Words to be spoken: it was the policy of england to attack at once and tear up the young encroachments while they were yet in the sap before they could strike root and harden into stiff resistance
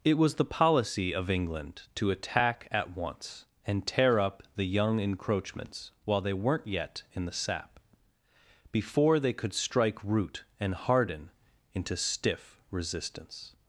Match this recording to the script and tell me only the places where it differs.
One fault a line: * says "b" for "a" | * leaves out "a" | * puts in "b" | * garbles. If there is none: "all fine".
* says "weren't" for "were"